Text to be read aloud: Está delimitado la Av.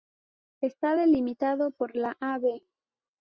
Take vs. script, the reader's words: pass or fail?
fail